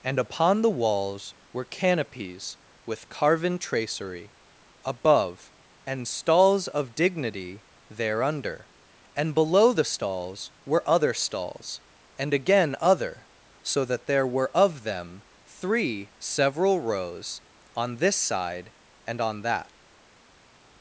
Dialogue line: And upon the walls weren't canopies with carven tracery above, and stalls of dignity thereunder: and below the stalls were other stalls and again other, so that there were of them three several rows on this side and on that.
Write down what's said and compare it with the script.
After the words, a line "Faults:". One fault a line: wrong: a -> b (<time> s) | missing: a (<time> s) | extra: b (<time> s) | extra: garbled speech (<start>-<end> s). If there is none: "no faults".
And upon the walls were canopies with carven tracery above, and stalls of dignity thereunder: and below the stalls were other stalls and again other, so that there were of them three several rows on this side and on that.
Faults:
wrong: weren't -> were (1.5 s)